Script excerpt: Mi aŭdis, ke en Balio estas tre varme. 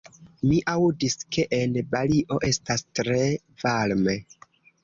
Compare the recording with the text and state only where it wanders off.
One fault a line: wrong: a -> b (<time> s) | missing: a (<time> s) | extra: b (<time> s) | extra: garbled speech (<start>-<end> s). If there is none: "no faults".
no faults